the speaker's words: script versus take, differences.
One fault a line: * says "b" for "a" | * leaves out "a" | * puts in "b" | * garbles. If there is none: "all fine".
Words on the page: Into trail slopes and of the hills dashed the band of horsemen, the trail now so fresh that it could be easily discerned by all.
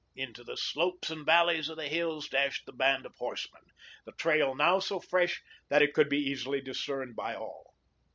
* says "the" for "trail"
* puts in "valleys"